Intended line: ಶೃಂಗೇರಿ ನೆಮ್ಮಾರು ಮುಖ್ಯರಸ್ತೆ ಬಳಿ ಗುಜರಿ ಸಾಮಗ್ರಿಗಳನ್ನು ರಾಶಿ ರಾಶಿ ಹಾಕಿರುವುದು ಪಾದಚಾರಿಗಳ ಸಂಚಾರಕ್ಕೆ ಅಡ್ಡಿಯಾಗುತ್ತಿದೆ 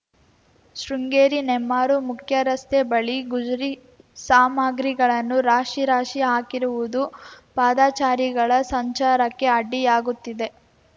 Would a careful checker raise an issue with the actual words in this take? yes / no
no